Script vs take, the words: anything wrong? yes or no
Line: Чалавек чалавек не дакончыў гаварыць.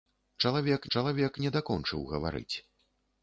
no